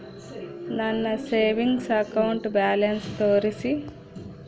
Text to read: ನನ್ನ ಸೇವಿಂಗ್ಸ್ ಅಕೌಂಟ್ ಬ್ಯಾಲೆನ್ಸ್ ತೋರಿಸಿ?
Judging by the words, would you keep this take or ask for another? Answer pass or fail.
pass